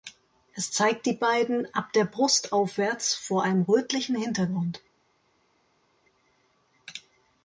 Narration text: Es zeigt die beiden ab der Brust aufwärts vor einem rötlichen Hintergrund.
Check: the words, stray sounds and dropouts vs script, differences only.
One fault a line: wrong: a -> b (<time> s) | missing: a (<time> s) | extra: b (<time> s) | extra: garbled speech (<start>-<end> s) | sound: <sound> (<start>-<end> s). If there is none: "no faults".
no faults